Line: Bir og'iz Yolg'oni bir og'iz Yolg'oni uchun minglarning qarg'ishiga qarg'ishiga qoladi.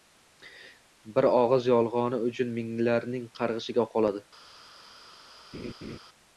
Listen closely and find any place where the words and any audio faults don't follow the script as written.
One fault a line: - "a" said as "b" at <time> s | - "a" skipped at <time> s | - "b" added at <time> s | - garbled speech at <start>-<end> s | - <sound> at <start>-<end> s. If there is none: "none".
- "bir og'iz Yolg'oni" skipped at 2.2 s
- "qarg'ishiga" skipped at 3.9 s
- laugh at 5.5-6.0 s